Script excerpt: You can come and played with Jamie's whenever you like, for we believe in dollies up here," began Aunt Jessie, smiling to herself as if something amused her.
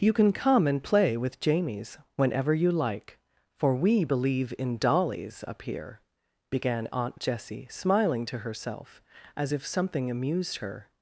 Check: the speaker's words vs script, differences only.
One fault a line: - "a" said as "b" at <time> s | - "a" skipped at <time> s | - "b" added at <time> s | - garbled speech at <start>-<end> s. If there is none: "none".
- "played" said as "play" at 0.8 s